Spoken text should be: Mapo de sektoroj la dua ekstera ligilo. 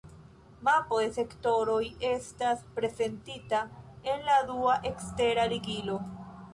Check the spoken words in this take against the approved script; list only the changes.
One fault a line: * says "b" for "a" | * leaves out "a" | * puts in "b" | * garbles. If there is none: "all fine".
* puts in "estas prezentita en"